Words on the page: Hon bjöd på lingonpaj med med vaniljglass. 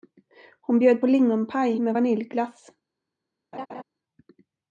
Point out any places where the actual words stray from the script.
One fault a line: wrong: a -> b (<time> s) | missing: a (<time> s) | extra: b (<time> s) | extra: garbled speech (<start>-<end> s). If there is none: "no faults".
missing: med (1.9 s)